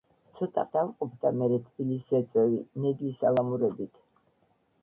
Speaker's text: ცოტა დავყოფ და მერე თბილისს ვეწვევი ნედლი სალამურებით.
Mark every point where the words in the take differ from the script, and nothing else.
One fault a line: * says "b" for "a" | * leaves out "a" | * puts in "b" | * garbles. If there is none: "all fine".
all fine